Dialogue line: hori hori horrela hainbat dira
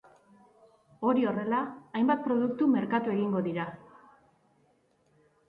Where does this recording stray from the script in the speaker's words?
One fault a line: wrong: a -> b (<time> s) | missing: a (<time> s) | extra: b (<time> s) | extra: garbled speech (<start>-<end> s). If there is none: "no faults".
missing: hori (1.3 s)
extra: produktu merkatu egingo (2.3 s)